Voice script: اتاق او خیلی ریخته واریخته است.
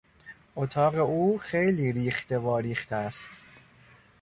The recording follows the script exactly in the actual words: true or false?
true